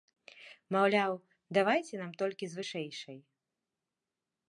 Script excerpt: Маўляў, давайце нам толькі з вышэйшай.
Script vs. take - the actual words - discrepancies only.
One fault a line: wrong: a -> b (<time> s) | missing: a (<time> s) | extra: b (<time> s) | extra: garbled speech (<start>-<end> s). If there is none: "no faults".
no faults